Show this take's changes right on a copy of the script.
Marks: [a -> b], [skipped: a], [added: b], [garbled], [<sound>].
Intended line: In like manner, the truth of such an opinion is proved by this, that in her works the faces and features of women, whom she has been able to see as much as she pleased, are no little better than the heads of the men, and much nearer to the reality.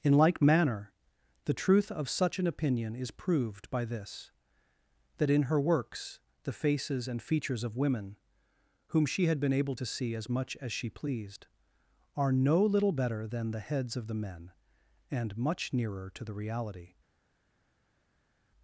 In like manner, the truth of such an opinion is proved by this, that in her works the faces and features of women, whom she [has -> had] been able to see as much as she pleased, are no little better than the heads of the men, and much nearer to the reality.